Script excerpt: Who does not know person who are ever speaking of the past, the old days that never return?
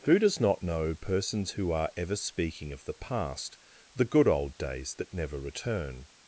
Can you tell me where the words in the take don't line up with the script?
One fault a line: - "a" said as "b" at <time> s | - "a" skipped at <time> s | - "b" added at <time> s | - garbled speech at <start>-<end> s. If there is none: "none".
- "person" said as "persons" at 0.9 s
- "good" added at 4.0 s